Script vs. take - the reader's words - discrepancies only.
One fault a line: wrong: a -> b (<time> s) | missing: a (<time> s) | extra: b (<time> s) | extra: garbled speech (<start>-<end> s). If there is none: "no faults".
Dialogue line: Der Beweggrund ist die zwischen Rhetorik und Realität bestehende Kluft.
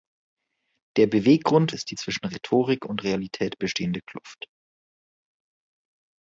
no faults